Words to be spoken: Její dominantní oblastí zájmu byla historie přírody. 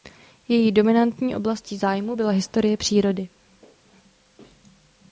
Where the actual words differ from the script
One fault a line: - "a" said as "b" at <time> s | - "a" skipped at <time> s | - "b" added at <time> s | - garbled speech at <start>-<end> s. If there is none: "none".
none